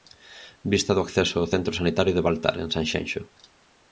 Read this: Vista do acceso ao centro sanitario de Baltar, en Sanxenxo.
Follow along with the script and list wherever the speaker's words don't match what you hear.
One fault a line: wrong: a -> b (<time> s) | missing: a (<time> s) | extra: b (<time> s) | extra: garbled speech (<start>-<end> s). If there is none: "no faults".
no faults